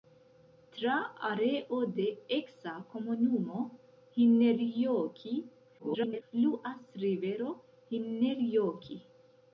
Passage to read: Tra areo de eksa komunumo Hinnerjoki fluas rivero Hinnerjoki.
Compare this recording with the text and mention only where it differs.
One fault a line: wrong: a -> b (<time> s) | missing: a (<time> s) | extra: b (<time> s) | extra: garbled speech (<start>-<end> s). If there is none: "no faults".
extra: garbled speech (5.8-6.2 s)